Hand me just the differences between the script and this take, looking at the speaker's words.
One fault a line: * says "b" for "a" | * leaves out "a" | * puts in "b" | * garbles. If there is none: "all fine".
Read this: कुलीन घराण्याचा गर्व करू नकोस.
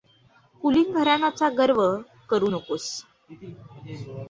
all fine